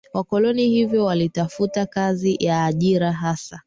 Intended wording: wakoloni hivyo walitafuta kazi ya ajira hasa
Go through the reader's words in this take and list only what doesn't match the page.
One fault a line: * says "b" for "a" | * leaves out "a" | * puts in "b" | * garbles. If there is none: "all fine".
all fine